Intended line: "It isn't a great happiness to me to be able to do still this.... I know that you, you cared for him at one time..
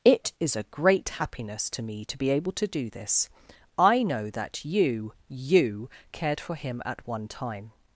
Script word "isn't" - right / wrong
wrong